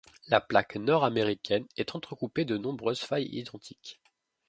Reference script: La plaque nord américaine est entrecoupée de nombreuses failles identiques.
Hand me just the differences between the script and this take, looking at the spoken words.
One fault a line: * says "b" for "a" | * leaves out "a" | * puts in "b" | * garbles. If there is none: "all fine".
all fine